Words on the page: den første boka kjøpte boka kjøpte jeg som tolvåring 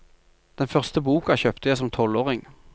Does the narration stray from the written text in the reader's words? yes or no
yes